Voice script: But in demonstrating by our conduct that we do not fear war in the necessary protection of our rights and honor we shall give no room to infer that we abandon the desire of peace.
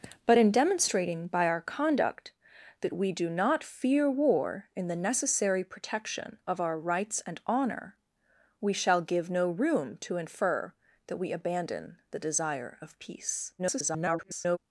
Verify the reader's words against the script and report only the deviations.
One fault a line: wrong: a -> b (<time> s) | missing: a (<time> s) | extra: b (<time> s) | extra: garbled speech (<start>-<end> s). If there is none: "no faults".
extra: garbled speech (13.6-14.6 s)